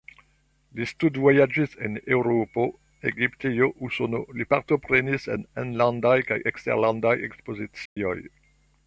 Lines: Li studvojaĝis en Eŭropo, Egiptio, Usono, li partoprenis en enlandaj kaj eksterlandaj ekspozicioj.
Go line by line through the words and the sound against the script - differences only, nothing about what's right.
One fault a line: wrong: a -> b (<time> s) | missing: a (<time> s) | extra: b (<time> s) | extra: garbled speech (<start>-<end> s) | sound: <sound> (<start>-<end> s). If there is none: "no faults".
sound: dropout (7.9-8.0 s)